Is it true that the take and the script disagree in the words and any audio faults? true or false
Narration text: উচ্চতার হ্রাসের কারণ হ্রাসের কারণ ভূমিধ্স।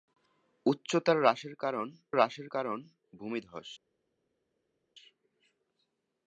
false